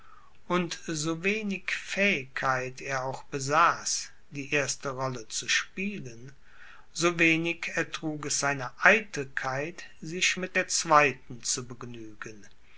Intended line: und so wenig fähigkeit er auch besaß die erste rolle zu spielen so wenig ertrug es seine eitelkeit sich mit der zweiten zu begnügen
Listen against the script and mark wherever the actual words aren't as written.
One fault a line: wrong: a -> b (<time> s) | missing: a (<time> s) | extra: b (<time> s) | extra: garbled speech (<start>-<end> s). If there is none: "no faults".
no faults